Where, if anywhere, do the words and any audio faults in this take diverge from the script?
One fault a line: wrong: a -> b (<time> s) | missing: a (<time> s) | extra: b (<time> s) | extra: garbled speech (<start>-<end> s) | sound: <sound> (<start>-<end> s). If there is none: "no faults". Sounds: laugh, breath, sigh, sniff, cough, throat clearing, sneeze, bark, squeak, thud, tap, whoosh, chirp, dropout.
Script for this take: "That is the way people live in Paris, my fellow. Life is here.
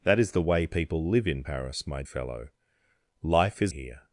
no faults